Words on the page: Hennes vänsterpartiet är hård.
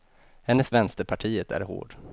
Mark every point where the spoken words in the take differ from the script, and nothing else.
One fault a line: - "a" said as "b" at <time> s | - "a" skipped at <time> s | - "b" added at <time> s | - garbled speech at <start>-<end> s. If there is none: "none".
none